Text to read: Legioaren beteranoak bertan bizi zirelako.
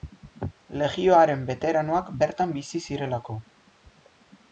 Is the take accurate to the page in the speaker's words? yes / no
yes